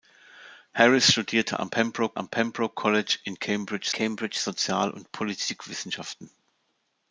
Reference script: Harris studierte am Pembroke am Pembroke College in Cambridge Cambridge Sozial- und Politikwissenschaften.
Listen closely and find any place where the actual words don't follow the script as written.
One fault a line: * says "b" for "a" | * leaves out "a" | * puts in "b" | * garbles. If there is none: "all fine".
all fine